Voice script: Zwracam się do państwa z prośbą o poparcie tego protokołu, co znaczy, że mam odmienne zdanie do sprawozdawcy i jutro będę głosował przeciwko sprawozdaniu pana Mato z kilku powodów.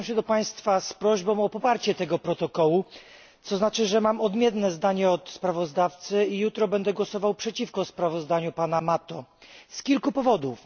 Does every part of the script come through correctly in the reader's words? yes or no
no